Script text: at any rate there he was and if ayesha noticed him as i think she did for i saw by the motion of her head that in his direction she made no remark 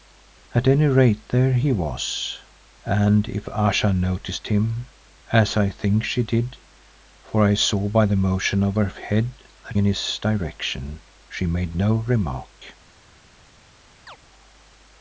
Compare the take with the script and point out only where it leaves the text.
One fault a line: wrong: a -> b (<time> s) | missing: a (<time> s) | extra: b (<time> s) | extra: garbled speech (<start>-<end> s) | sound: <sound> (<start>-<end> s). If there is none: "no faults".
sound: chirp (14.1-14.2 s)